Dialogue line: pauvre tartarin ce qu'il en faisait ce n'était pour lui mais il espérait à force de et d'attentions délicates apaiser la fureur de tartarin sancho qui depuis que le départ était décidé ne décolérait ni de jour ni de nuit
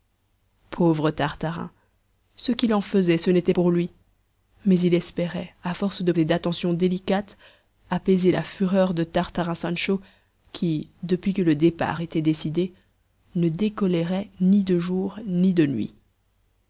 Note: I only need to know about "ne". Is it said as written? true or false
true